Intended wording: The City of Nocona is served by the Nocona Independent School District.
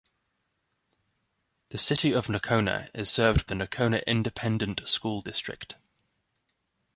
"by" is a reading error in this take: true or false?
true